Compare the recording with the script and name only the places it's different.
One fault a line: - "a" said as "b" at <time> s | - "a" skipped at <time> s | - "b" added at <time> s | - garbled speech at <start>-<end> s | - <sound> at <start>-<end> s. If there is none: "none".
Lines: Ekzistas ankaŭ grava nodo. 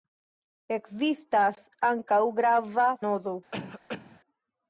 - cough at 3.5-4.2 s